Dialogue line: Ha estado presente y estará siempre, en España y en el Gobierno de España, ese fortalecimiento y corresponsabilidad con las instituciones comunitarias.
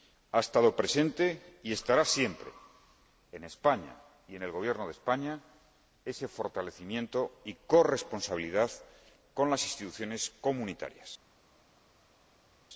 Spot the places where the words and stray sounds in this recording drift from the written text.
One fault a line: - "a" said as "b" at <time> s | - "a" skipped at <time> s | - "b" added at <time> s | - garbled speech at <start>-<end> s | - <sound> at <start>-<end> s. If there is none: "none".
none